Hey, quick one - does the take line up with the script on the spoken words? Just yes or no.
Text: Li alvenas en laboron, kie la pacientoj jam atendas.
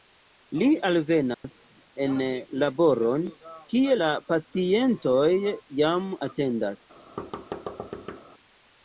yes